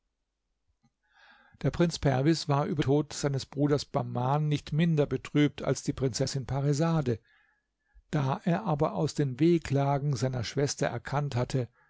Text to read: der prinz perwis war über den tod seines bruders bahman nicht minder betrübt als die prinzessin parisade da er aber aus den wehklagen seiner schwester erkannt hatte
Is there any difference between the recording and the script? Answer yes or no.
yes